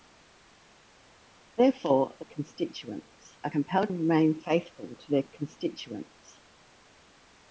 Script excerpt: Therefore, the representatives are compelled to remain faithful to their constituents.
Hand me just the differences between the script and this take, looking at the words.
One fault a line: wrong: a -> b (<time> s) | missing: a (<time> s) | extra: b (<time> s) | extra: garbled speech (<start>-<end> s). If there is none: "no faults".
wrong: representatives -> constituents (2.2 s)
missing: to (3.9 s)